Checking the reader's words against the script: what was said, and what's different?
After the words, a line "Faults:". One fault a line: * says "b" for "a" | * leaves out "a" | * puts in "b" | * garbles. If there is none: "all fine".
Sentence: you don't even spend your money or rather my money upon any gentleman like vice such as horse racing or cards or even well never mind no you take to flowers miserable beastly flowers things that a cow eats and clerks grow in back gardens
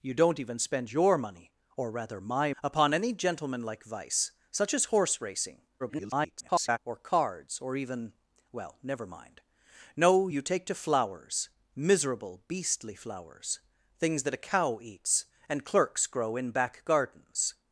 you don't even spend your money or rather my upon any gentleman like vice such as horse racing [garbled] or cards or even well never mind no you take to flowers miserable beastly flowers things that a cow eats and clerks grow in back gardens
Faults:
* leaves out "money"
* garbles